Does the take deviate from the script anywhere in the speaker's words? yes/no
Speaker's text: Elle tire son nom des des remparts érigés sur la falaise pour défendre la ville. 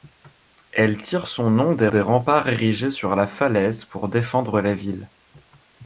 no